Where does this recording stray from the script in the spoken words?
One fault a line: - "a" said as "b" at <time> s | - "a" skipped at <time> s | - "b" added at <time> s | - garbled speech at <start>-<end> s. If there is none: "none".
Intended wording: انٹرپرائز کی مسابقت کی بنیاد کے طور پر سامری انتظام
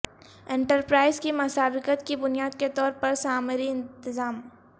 none